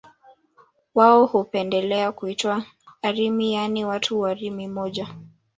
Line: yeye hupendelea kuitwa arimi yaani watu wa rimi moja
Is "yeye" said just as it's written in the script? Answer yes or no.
no